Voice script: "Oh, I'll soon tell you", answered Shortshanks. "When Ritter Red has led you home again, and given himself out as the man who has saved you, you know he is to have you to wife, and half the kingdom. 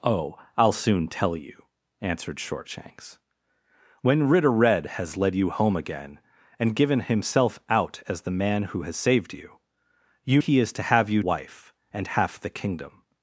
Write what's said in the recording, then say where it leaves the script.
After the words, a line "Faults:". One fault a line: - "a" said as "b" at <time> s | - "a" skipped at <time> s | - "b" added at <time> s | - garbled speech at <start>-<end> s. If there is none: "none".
"Oh, I'll soon tell you", answered Shortshanks. "When Ritter Red has led you home again, and given himself out as the man who has saved you, you he is to have you wife, and half the kingdom.
Faults:
- "know" skipped at 10.4 s
- "to" skipped at 11.2 s